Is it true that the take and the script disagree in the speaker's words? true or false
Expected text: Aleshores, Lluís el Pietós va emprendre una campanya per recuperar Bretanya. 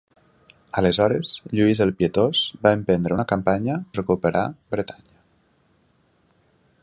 true